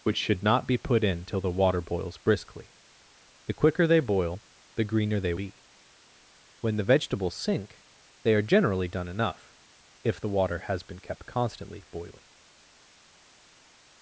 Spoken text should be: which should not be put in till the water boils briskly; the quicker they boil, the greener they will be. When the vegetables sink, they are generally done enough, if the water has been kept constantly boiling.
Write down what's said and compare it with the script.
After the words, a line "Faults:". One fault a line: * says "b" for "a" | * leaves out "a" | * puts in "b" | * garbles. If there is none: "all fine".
which should not be put in till the water boils briskly; the quicker they boil, the greener they be. When the vegetables sink, they are generally done enough, if the water has been kept constantly boiling.
Faults:
* leaves out "will"